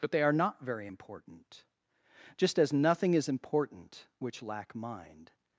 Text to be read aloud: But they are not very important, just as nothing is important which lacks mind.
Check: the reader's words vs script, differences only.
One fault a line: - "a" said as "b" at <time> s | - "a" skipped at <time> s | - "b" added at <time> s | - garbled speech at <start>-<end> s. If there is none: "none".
- "lacks" said as "lack" at 4.4 s